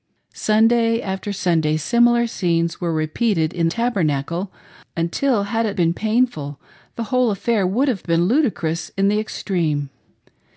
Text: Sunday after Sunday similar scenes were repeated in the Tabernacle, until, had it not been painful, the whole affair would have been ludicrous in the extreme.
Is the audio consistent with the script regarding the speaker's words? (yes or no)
no